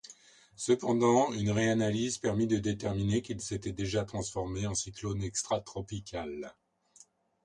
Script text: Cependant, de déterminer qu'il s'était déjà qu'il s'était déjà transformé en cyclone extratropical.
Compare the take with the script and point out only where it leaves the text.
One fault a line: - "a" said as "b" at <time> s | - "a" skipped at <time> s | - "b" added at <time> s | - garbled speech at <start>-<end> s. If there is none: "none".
- "de déterminer qu'il s'était déjà" said as "une réanalyse permit de déterminer" at 1.3 s